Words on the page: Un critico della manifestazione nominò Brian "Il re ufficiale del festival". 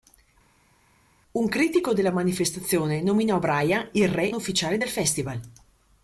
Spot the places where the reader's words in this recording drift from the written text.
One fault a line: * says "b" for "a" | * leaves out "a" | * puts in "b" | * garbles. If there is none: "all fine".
all fine